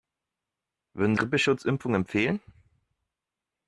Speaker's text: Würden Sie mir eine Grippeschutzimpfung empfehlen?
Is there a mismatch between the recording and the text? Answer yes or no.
yes